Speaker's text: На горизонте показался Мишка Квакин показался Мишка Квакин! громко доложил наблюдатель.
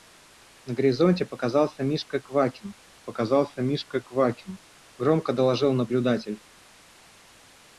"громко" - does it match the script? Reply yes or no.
yes